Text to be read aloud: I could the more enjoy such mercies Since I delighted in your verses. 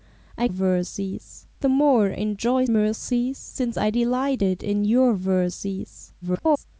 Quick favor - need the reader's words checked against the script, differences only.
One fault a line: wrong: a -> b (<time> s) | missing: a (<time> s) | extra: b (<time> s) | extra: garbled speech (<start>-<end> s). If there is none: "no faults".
wrong: could -> verses (0.5 s)
missing: such (2.6 s)
extra: garbled speech (6.2-6.6 s)